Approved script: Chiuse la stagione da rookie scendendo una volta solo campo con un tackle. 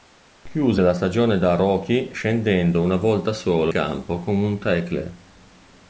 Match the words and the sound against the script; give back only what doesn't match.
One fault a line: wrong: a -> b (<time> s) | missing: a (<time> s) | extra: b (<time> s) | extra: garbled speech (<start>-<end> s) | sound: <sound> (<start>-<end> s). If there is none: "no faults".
no faults